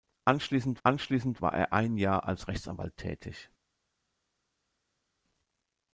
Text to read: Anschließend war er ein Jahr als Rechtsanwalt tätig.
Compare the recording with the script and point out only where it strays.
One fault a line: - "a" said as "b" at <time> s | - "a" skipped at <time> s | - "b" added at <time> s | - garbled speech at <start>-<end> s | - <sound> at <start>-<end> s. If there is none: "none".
- "anschließend" added at 0.8 s